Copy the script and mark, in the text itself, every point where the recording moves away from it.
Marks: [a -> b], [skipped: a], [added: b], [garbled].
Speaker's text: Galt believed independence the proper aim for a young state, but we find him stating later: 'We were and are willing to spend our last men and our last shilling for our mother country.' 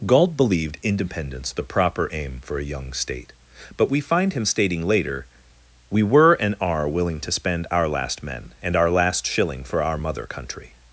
Galt believed independence the proper aim for a young state, but we find him stating later: 'We were and are willing to spend our last men and our last shilling for our mother country.'